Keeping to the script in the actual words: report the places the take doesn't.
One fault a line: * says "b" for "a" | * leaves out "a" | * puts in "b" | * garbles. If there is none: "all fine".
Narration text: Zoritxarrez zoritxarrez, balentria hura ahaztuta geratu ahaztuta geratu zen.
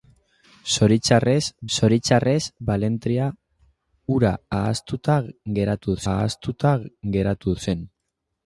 all fine